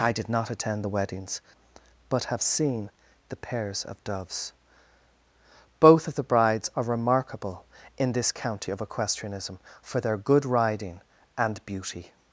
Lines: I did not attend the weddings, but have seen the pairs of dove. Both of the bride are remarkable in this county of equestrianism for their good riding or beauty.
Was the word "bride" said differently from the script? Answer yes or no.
yes